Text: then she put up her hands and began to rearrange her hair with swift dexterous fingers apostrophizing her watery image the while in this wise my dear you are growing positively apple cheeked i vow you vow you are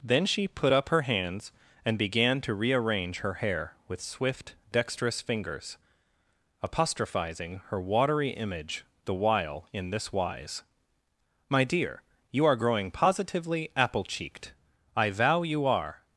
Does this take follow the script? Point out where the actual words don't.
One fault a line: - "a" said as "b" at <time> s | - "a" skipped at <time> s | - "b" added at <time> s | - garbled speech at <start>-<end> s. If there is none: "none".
- "vow you" skipped at 15.7 s